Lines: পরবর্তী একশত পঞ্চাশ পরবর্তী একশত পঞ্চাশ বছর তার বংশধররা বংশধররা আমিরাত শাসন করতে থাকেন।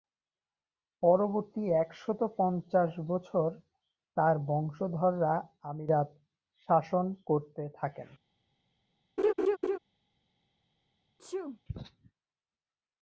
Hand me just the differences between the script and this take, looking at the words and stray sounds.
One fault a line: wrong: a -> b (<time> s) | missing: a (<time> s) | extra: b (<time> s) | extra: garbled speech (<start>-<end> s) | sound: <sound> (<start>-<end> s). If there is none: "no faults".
missing: পরবর্তী একশত পঞ্চাশ (2.9 s)
missing: বংশধররা (5.3 s)
sound: laugh (9.2-9.8 s)
sound: sneeze (11.2-11.6 s)